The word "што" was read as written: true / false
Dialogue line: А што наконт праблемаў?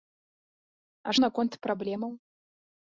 false